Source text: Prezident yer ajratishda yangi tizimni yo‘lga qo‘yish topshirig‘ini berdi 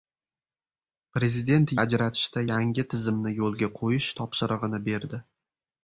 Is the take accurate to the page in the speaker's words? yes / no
no